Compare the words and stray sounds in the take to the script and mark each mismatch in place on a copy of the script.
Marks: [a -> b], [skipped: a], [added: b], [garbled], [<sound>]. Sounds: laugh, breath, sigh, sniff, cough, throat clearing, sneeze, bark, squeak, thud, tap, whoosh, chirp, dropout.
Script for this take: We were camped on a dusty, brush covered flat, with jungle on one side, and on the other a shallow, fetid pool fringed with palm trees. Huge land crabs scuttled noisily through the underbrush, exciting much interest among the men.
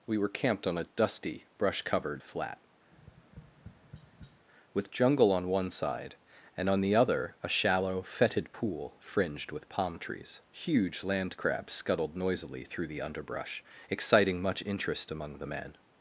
We were camped on a dusty, brush covered flat, [tap] with jungle on one side, and on the other a shallow, fetid pool fringed with palm trees. Huge land crabs scuttled noisily through the underbrush, exciting much interest among the men.